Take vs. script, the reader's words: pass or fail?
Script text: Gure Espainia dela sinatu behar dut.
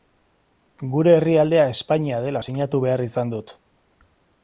fail